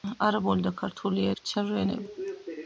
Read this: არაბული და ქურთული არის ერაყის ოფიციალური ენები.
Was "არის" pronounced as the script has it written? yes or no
no